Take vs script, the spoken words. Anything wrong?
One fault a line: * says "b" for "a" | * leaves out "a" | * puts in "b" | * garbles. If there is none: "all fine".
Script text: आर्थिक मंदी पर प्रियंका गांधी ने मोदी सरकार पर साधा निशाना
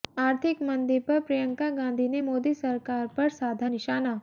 all fine